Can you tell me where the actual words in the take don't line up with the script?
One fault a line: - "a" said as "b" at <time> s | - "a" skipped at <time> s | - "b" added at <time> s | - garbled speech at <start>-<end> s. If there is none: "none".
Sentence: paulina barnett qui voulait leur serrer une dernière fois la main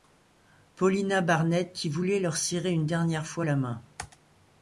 none